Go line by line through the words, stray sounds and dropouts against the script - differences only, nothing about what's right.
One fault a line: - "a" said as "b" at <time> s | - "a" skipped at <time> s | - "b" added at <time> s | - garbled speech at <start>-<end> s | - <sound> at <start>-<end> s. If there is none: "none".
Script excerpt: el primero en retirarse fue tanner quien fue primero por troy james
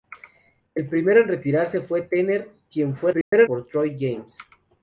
- dropout at 3.2-3.3 s